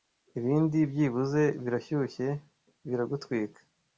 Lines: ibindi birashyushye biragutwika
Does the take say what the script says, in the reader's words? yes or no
no